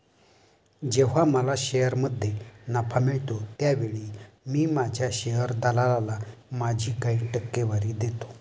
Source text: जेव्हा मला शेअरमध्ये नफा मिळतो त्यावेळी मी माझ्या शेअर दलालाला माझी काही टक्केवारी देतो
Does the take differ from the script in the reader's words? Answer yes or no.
no